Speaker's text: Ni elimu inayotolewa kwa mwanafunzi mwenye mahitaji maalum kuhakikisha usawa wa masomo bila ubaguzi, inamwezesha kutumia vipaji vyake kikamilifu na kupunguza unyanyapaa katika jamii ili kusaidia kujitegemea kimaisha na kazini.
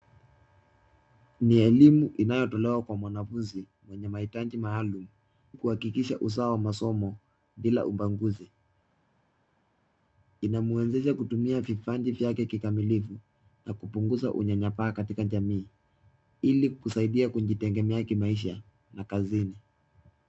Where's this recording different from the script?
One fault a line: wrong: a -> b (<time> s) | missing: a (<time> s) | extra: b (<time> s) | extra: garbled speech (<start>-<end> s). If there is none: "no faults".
no faults